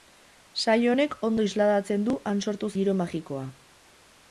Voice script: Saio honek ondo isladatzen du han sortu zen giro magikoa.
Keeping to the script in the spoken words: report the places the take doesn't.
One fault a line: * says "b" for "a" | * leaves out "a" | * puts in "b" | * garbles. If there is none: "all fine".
* leaves out "zen"